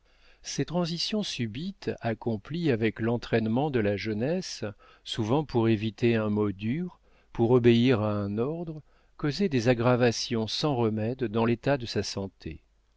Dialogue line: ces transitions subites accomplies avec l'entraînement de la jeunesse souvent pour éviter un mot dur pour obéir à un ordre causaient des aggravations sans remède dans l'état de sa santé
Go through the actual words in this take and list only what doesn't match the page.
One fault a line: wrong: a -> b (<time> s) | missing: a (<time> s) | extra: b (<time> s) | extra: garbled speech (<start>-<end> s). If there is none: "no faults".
no faults